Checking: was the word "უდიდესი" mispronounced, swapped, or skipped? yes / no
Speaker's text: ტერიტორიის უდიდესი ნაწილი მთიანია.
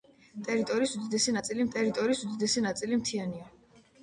no